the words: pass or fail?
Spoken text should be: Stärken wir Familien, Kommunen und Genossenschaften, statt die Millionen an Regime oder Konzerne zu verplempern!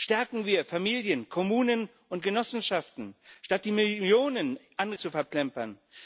fail